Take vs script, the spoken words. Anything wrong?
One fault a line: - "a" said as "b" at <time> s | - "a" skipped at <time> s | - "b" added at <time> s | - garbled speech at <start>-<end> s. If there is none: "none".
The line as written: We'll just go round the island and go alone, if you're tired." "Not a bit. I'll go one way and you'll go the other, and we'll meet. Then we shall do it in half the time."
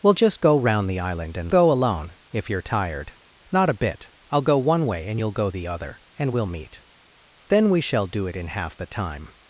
none